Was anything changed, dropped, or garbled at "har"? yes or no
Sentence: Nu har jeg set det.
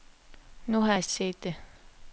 no